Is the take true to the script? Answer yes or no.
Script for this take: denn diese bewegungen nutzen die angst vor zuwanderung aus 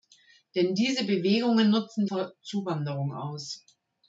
no